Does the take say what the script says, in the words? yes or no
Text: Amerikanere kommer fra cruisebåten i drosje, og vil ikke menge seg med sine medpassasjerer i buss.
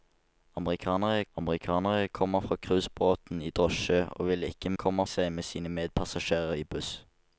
no